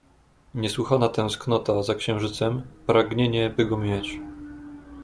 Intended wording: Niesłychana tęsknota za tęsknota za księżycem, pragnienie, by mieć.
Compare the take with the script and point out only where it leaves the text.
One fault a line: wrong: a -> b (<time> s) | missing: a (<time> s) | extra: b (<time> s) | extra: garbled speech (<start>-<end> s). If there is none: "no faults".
missing: tęsknota za (1.9 s)
extra: go (3.6 s)